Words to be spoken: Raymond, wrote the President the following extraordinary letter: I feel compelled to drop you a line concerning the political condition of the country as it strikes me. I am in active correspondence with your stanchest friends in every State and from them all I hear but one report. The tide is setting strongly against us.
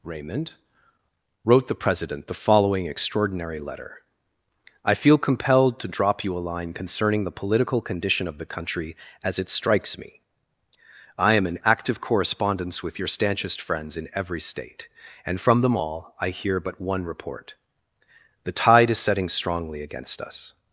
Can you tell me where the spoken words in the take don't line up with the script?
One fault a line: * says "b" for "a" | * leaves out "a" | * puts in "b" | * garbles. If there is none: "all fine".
all fine